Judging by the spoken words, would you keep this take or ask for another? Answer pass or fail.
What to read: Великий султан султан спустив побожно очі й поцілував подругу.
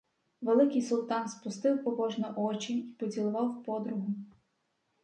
fail